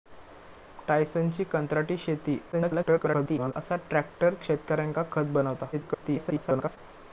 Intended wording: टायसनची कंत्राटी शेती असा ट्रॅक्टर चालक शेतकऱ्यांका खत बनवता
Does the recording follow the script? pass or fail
fail